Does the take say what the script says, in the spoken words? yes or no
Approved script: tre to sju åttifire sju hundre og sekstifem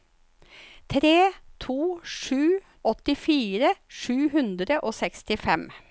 yes